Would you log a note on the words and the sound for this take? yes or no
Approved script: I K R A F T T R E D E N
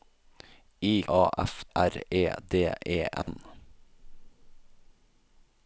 yes